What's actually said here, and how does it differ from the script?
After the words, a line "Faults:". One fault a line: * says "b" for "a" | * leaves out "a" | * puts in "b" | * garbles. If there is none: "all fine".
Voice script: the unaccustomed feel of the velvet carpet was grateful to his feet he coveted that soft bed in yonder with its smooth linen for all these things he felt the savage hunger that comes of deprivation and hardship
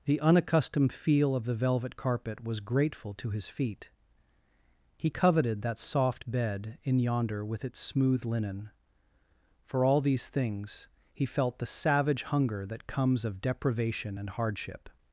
the unaccustomed feel of the velvet carpet was grateful to his feet he coveted that soft bed in yonder with its smooth linen for all these things he felt the savage hunger that comes of deprivation and hardship
Faults:
all fine